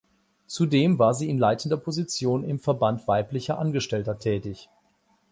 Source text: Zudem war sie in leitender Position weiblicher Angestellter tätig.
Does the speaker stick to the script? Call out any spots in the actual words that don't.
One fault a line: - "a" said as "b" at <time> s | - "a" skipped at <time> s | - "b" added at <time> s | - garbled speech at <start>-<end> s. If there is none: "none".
- "im Verband" added at 2.4 s